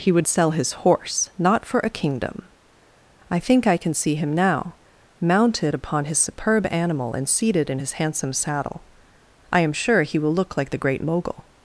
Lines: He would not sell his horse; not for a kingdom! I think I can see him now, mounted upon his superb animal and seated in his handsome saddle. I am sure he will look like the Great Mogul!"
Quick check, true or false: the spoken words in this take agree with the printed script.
false